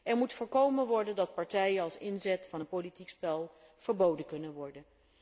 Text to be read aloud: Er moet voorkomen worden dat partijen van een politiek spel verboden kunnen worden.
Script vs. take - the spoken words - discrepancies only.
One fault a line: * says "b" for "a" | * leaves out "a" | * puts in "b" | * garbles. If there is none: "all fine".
* puts in "als inzet"